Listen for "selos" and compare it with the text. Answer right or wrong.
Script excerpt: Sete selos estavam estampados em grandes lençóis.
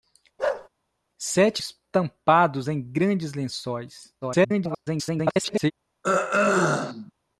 wrong